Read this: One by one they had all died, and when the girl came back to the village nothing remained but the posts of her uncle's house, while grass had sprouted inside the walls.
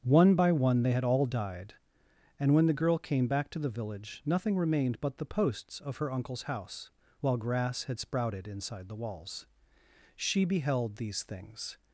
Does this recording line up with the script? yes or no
no